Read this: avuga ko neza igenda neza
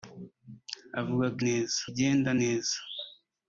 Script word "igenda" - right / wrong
right